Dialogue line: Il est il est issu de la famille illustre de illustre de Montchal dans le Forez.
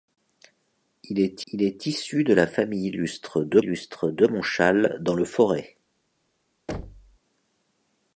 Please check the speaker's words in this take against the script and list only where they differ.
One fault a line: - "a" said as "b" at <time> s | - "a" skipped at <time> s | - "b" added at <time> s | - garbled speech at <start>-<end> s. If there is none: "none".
none